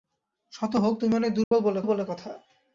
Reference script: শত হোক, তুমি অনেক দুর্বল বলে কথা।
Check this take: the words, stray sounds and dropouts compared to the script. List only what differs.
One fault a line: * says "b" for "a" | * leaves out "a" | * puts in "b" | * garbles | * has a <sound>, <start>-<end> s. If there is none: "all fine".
* has a dropout, 1.4-1.5 s
* puts in "বলে"